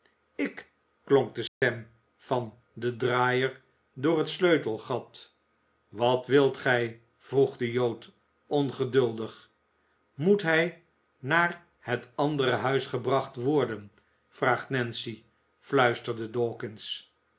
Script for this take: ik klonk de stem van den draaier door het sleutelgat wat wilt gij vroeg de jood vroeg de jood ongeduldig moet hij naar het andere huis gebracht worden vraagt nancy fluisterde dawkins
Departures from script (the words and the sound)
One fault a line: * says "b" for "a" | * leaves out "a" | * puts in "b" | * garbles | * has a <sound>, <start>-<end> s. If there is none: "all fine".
* has a dropout, 1.5-1.6 s
* leaves out "vroeg de jood"